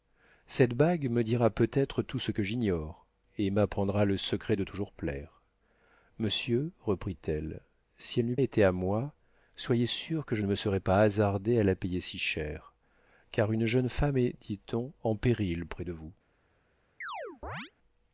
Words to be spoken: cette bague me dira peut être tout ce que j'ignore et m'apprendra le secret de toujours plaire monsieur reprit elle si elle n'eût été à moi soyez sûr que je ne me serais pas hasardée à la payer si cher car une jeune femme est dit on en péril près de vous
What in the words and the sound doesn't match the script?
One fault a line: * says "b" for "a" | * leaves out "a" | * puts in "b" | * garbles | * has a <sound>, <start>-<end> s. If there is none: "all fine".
* has a chirp, 17.0-17.7 s